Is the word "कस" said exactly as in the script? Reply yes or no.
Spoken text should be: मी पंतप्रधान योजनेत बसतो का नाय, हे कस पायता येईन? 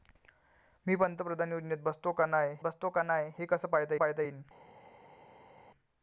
yes